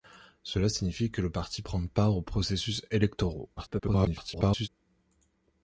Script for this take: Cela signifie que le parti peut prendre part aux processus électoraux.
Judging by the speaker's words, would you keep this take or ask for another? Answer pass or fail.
fail